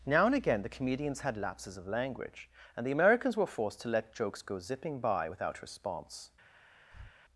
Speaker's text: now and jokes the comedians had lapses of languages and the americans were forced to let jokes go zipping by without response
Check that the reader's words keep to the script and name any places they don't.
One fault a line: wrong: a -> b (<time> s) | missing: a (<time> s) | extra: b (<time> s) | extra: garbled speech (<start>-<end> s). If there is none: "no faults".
wrong: jokes -> again (0.3 s)
wrong: languages -> language (1.9 s)